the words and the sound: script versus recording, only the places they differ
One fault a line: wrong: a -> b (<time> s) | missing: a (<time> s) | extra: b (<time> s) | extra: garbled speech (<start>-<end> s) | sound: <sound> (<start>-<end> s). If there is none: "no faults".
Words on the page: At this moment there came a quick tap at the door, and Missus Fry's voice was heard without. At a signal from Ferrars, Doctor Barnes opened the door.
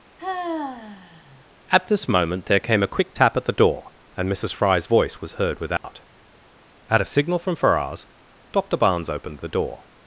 sound: sigh (0.2-1.5 s)
sound: dropout (5.8-5.8 s)